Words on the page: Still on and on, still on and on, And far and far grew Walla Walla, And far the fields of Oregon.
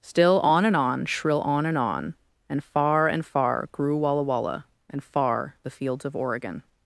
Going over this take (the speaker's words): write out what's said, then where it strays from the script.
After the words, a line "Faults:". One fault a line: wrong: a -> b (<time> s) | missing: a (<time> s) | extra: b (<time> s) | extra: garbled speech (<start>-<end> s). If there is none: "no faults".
Still on and on, shrill on and on, And far and far grew Walla Walla, And far the fields of Oregon.
Faults:
wrong: still -> shrill (1.1 s)